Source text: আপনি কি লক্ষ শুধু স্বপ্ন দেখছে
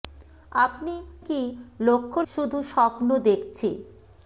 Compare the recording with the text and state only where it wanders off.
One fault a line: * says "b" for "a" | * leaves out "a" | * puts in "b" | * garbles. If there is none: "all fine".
all fine